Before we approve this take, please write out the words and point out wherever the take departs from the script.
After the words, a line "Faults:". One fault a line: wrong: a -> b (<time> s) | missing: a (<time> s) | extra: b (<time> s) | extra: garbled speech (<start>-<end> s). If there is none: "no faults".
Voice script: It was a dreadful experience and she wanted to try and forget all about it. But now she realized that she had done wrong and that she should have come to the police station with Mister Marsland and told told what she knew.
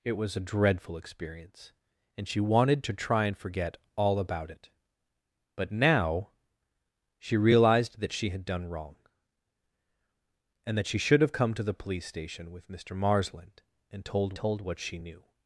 It was a dreadful experience and she wanted to try and forget all about it. But now she realized that she had done wrong and that she should have come to the police station with Mister Marsland and told told what she knew.
Faults:
no faults